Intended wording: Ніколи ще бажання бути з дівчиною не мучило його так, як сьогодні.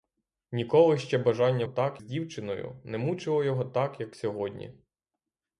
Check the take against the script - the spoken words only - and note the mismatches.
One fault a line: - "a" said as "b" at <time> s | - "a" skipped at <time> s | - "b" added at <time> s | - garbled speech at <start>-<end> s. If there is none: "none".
- "бути" said as "так" at 1.7 s